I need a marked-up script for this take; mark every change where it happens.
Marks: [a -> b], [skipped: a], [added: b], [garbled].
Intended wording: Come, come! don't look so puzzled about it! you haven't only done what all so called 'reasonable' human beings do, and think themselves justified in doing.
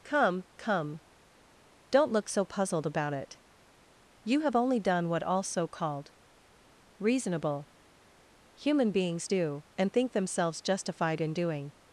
Come, come! don't look so puzzled about it! you [haven't -> have] only done what all so called 'reasonable' human beings do, and think themselves justified in doing.